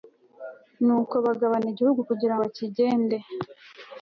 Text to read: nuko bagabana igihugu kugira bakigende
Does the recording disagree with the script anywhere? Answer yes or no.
no